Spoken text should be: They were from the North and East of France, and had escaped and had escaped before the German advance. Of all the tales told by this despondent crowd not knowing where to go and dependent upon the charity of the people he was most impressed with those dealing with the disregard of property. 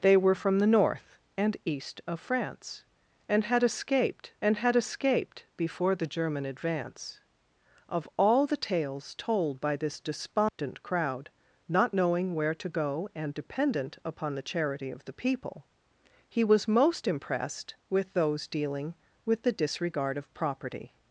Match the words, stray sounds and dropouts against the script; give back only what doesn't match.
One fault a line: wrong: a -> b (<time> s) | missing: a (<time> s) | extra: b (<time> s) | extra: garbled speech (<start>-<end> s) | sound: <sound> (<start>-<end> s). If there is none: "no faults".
sound: dropout (10.5-10.6 s)